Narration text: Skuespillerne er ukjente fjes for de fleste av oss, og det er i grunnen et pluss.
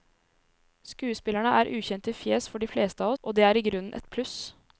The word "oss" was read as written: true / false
false